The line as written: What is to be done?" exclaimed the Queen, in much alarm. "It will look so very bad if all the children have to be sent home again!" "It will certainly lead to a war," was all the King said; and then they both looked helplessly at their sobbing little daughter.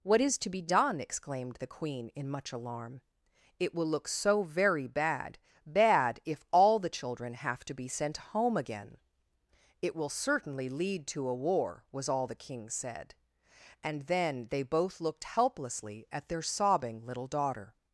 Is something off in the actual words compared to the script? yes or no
yes